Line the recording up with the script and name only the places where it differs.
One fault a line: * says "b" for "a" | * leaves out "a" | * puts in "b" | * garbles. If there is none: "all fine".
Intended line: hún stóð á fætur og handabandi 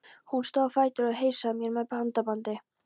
* puts in "heilsaði mér með"